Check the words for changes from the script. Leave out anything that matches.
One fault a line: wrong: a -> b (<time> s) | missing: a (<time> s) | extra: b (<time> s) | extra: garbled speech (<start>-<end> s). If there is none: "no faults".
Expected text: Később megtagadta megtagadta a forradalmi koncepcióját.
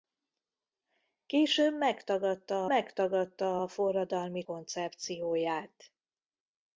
no faults